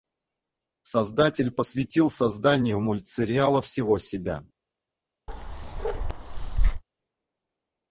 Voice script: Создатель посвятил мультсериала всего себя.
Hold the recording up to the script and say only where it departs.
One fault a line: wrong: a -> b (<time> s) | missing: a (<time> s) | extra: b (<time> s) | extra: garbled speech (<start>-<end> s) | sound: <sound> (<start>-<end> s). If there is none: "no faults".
extra: созданию (2.1 s)
sound: bark (5.3-6.8 s)